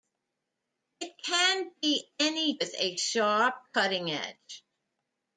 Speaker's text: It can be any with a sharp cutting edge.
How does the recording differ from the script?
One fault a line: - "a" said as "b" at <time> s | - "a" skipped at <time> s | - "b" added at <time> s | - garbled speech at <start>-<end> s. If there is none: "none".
none